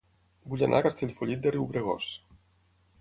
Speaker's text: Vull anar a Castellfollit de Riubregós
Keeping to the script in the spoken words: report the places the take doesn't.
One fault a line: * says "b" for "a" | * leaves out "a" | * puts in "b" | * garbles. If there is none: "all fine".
all fine